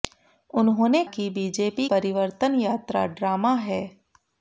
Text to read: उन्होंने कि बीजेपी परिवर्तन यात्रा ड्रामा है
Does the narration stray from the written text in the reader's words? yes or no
no